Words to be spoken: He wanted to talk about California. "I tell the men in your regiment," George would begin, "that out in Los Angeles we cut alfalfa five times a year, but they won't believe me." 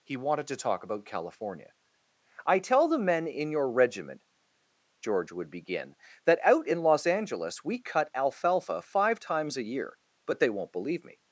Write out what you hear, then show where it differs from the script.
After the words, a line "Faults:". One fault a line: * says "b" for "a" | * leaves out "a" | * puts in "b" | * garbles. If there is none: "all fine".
He wanted to talk about California. "I tell the men in your regiment," George would begin, "that out in Los Angeles we cut alfalfa five times a year, but they won't believe me."
Faults:
all fine